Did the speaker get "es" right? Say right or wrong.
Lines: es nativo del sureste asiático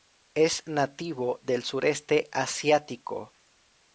right